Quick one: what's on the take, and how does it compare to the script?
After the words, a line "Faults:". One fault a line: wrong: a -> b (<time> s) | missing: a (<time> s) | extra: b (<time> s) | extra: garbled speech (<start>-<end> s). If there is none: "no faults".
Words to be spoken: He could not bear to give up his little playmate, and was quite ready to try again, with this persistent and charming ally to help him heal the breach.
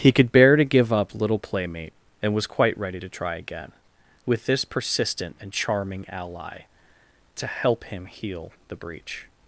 He could bear to give up little playmate, and was quite ready to try again, with this persistent and charming ally to help him heal the breach.
Faults:
missing: not (0.3 s)
missing: his (1.1 s)